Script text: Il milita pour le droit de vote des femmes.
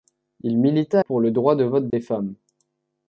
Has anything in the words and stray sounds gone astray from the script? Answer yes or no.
yes